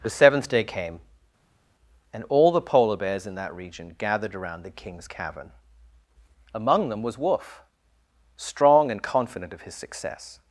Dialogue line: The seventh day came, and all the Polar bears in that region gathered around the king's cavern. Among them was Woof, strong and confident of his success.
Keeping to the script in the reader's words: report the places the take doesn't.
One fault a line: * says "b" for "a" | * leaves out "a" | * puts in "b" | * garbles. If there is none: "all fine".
all fine